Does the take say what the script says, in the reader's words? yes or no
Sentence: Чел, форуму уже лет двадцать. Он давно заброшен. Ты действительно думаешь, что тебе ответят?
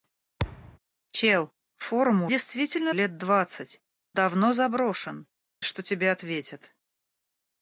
no